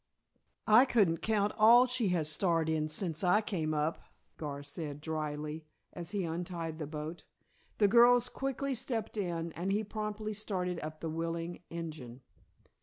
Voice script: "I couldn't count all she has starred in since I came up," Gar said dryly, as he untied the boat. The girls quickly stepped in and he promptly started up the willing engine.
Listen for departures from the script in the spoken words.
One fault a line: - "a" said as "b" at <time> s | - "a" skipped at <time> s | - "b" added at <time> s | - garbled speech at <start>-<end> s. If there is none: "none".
none